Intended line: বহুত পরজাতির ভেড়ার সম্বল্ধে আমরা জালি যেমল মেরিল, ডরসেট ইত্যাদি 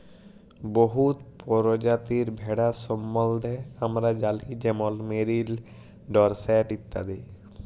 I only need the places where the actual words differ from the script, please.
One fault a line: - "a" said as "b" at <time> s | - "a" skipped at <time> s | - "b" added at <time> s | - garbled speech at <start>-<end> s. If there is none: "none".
none